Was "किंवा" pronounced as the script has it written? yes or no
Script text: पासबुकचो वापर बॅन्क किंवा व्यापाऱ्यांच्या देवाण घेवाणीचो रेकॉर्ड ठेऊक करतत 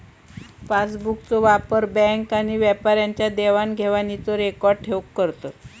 no